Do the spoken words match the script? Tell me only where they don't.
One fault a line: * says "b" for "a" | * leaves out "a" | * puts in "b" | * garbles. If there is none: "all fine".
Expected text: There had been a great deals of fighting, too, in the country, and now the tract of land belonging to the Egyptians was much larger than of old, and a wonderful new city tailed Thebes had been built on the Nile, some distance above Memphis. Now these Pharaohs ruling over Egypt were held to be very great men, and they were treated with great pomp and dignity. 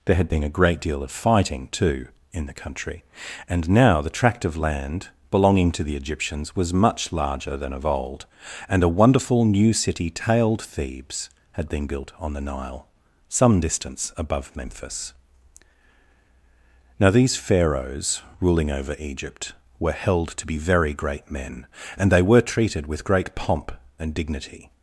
* says "deal" for "deals"